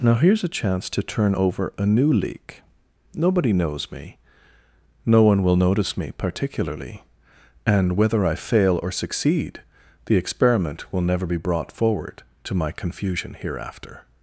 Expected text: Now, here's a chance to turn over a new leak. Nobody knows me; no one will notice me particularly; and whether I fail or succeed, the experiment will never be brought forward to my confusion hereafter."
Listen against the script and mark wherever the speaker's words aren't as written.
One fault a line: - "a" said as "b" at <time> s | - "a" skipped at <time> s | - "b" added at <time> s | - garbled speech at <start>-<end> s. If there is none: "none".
none